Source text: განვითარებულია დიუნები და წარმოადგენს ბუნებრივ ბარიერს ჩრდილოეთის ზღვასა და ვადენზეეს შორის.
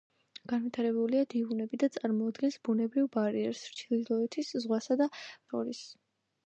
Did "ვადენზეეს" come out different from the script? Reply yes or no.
yes